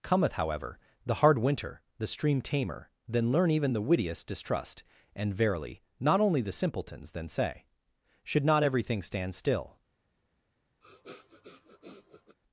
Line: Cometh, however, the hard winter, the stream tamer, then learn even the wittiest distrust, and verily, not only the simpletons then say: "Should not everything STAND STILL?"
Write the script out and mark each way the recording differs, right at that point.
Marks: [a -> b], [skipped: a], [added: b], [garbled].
Cometh, however, the hard winter, the stream tamer, then learn even the wittiest distrust, and verily, not only the simpletons then say: "Should not everything STAND STILL?"